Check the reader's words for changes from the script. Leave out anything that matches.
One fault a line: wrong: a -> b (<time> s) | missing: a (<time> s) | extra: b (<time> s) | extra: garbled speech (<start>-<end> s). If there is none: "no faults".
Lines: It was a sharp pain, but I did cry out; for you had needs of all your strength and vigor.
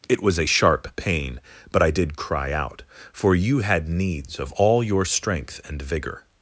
no faults